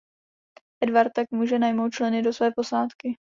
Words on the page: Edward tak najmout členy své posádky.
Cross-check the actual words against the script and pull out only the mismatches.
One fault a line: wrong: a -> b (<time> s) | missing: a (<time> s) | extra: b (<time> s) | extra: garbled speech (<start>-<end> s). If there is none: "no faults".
extra: může (1.3 s)
extra: do (2.2 s)